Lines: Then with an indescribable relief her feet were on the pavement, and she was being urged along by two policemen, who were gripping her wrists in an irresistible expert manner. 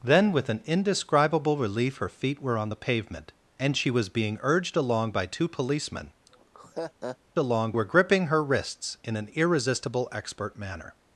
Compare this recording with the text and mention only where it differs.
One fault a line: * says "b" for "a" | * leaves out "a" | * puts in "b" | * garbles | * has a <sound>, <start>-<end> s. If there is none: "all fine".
* has a laugh, 6.3-7.2 s
* says "along" for "who"